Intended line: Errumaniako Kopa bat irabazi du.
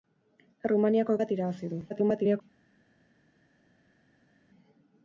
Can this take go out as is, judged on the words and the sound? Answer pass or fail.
fail